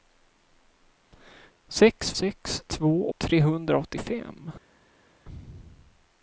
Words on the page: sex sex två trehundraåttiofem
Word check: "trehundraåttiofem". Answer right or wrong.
right